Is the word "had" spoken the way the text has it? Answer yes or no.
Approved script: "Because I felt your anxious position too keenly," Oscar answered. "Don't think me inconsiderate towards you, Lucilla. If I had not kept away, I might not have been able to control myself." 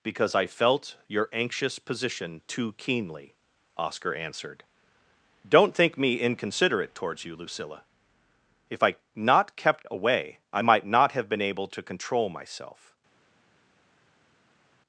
no